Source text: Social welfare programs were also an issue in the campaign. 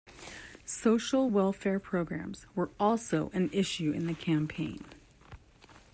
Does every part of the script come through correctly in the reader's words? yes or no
yes